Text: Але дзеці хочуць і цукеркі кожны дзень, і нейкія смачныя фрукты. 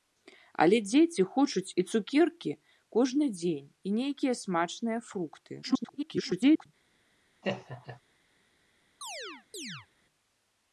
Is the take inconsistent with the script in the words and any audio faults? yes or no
yes